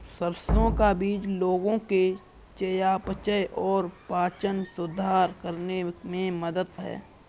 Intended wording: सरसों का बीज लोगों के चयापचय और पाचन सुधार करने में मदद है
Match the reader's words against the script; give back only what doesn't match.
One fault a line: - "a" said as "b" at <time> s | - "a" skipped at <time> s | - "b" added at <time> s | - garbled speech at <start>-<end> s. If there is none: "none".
none